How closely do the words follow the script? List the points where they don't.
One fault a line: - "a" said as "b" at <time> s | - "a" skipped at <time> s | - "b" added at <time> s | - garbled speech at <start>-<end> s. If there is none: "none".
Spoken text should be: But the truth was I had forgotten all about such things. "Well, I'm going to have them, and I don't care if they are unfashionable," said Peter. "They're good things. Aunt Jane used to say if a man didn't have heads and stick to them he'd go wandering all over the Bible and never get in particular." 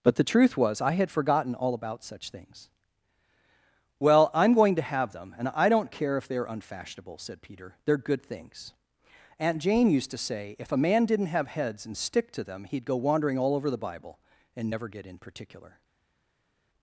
none